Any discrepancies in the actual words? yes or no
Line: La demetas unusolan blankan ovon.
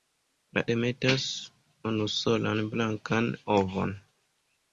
no